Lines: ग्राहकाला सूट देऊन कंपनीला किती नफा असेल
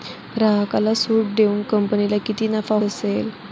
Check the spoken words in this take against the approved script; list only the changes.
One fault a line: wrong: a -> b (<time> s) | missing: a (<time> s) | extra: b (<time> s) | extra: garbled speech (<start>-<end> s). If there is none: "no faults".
no faults